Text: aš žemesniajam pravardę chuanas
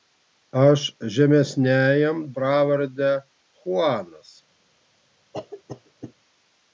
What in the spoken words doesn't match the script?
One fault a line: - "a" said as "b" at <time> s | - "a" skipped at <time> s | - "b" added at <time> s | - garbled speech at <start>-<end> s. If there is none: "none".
none